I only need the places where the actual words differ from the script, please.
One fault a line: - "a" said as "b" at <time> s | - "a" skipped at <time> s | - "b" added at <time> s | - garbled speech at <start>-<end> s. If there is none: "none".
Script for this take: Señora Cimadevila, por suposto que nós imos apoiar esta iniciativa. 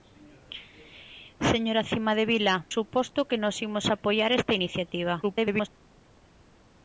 - "por" skipped at 2.5 s
- garbled speech at 5.2-5.7 s